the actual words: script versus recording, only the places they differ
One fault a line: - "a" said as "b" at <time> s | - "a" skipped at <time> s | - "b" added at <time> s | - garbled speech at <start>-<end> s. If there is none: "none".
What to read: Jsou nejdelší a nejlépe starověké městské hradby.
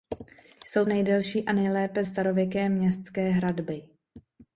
none